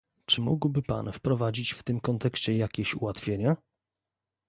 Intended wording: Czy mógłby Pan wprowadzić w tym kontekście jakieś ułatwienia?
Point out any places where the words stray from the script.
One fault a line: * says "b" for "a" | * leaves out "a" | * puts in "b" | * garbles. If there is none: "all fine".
all fine